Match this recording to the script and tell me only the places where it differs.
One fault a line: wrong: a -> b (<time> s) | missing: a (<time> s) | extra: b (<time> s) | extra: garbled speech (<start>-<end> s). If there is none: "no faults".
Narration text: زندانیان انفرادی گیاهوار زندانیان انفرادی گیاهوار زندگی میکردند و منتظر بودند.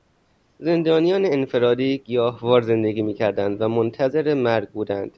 missing: زندانیان انفرادی گیاهوار (2.6 s)
extra: مرگ (4.3 s)